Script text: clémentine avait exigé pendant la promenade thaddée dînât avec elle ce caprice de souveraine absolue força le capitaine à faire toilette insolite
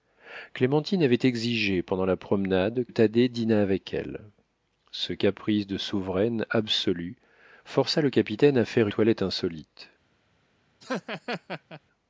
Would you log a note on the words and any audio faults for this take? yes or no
yes